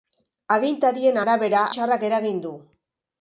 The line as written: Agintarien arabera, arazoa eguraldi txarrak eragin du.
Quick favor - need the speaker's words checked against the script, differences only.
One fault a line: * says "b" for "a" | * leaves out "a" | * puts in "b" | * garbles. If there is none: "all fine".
* leaves out "arazoa eguraldi"